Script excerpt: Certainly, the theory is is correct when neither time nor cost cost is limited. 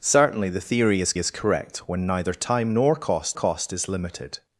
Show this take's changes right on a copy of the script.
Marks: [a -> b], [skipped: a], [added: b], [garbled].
Certainly, the theory is is correct when neither time nor cost cost is limited.